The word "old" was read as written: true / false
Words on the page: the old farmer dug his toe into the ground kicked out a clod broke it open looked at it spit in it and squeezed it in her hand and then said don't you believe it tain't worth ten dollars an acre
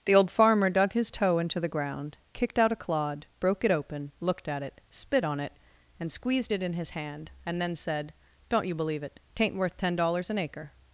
true